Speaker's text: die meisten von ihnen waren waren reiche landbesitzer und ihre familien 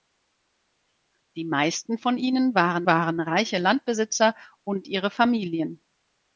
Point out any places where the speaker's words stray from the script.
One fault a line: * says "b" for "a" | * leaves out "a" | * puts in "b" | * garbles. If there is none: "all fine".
all fine